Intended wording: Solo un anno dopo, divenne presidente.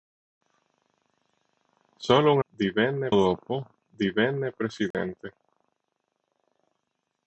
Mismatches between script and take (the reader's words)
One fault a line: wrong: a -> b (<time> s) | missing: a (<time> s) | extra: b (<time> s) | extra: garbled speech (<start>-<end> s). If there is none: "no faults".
wrong: anno -> divenne (2.5 s)